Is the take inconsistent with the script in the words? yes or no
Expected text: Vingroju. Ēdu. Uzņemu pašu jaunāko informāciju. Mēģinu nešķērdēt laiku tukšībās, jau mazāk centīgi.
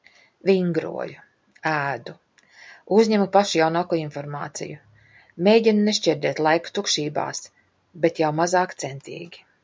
yes